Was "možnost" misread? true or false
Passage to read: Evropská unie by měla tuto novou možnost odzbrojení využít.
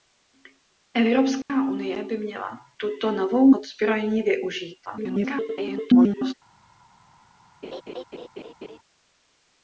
true